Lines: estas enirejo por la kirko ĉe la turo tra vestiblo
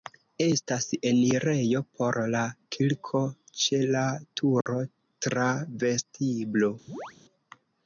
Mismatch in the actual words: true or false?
false